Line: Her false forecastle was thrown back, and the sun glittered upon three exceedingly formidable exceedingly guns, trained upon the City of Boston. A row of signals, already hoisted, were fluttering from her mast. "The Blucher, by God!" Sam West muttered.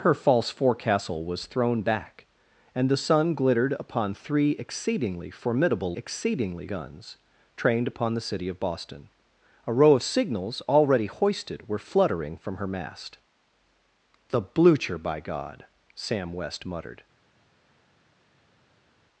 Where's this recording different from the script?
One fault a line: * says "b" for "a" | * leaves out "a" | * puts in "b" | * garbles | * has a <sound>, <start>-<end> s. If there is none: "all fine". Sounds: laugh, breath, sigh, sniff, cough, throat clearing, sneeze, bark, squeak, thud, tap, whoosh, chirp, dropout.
all fine